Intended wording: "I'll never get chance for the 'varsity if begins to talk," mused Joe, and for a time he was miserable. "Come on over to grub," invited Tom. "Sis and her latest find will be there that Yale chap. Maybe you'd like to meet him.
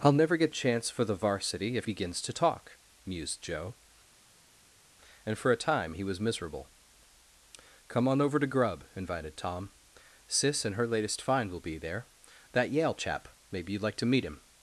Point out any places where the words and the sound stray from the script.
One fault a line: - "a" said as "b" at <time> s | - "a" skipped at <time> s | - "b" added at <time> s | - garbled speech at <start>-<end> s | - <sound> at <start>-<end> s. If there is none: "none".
none